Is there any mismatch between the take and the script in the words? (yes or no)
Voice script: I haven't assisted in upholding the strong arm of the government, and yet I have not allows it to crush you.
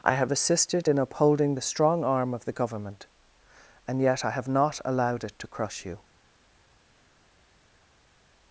yes